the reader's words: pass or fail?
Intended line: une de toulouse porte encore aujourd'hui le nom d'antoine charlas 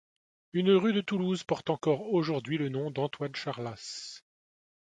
fail